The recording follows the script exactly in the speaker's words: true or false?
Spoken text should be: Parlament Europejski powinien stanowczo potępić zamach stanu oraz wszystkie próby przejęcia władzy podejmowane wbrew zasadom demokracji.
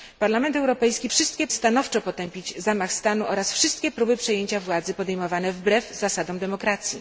false